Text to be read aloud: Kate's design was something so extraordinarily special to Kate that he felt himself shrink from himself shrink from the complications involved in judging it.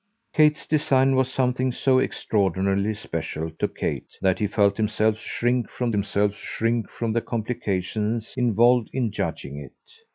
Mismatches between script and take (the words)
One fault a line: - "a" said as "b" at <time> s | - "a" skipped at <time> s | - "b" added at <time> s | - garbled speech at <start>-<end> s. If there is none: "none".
none